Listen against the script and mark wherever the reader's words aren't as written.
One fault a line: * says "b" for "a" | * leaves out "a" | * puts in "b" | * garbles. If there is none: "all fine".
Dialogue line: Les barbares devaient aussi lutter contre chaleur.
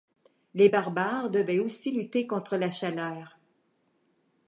* puts in "la"